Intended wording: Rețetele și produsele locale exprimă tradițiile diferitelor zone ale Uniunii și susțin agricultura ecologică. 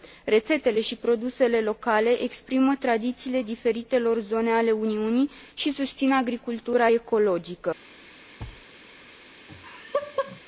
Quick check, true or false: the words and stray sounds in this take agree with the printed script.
false